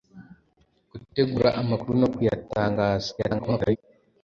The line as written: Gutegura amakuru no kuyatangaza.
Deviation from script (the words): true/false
true